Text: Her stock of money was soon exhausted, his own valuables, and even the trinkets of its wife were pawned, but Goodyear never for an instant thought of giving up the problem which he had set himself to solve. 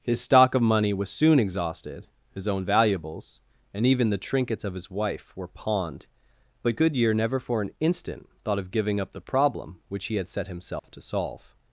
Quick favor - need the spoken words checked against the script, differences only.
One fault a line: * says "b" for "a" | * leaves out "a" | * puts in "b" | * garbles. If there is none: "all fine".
* says "His" for "Her"
* says "his" for "its"